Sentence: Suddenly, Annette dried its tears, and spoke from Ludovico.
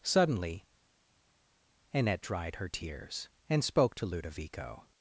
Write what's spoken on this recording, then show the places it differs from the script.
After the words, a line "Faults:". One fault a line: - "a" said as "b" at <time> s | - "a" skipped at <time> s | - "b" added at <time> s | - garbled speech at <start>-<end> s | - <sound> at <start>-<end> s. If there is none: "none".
Suddenly, Annette dried her tears, and spoke to Ludovico.
Faults:
- "its" said as "her" at 2.5 s
- "from" said as "to" at 3.9 s